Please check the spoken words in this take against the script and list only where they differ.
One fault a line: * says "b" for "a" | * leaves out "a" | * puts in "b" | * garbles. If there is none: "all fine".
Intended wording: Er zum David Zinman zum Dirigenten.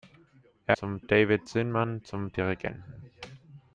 all fine